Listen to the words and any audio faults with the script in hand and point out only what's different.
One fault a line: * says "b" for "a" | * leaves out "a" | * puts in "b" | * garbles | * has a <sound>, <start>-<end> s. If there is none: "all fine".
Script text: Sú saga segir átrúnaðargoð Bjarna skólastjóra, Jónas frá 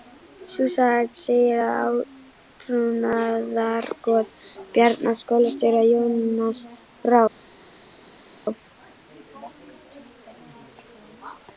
* puts in "að"